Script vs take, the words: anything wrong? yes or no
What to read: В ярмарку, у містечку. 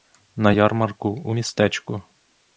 yes